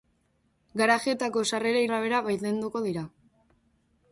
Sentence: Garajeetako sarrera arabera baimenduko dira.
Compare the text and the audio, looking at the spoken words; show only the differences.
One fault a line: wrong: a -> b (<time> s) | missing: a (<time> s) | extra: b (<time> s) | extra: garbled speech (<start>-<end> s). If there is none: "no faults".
no faults